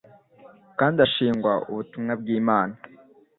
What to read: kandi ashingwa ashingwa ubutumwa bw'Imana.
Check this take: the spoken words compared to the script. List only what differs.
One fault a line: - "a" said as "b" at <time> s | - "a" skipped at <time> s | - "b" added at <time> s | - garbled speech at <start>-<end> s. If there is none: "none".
- "ashingwa" skipped at 1.5 s